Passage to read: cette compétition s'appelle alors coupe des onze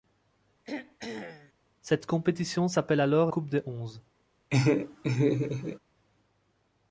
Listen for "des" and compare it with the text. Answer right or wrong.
right